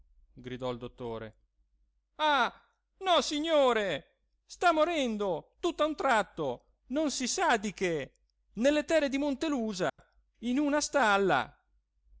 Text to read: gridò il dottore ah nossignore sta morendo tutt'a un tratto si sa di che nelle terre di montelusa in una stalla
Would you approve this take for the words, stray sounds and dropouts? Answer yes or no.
no